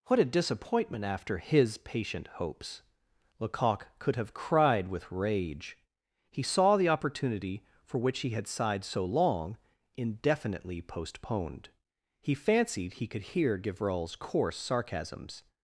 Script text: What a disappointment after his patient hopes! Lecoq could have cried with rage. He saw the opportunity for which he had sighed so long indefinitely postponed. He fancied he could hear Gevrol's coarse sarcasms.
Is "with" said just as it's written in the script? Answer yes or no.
yes